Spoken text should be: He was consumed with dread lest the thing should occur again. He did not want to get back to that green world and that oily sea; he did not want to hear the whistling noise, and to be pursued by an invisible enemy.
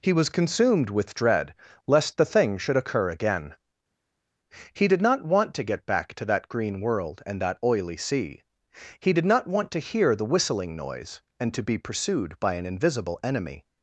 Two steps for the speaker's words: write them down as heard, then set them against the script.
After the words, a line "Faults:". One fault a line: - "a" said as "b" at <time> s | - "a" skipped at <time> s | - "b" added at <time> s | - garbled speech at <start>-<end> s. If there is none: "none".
He was consumed with dread lest the thing should occur again. He did not want to get back to that green world and that oily sea; he did not want to hear the whistling noise, and to be pursued by an invisible enemy.
Faults:
none